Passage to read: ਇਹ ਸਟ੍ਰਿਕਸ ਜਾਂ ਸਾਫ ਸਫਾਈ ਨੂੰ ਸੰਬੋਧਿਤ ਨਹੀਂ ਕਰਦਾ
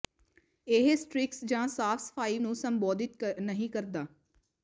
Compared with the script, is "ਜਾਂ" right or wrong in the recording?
right